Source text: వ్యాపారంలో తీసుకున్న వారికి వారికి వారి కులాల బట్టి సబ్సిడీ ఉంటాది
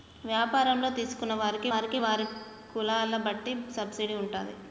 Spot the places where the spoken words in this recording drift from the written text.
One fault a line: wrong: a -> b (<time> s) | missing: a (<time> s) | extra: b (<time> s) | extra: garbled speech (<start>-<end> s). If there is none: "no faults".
no faults